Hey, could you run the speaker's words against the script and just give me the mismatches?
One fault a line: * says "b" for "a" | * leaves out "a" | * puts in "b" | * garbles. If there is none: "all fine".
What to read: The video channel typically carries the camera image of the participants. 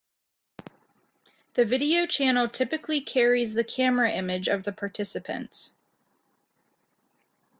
all fine